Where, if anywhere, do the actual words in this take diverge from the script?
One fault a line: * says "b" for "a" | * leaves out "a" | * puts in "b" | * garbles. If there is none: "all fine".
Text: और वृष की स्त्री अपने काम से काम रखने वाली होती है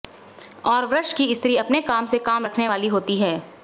all fine